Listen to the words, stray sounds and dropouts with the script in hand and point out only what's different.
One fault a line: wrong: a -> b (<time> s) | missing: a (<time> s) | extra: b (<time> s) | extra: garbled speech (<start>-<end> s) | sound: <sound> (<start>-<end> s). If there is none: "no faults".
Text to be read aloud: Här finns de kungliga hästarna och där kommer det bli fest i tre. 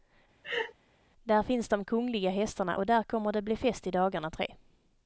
sound: laugh (0.4-0.7 s)
wrong: Här -> Där (1.2 s)
extra: dagarna (3.9 s)